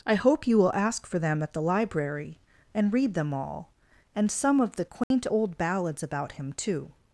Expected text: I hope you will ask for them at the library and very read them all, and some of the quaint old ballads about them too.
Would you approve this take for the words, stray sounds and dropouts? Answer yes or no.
no